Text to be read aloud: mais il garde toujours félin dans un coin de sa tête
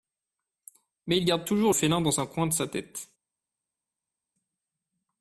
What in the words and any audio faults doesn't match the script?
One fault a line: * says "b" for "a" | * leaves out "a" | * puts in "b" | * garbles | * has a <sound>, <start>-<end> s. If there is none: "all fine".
all fine